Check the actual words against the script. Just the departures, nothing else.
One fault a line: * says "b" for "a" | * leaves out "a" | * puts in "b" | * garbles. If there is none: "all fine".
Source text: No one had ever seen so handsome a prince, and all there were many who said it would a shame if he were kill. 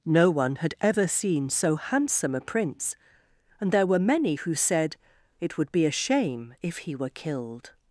* leaves out "all"
* puts in "be"
* says "killed" for "kill"